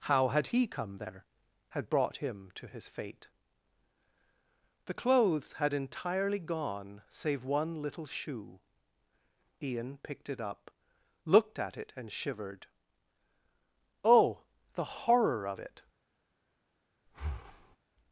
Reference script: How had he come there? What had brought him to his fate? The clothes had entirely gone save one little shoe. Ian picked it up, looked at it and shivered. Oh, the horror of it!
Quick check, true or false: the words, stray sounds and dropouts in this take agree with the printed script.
false